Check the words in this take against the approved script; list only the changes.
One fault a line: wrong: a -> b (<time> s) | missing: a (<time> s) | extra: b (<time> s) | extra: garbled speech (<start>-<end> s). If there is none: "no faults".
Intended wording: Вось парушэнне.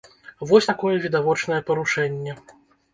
extra: такое відавочнае (0.7 s)